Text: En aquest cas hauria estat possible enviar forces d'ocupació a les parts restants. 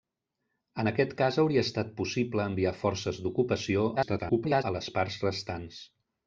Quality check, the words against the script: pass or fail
fail